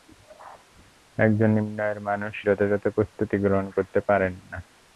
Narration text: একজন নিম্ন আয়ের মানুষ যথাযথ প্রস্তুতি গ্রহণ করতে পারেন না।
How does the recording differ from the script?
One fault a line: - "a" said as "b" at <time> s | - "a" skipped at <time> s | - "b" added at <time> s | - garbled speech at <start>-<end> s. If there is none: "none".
none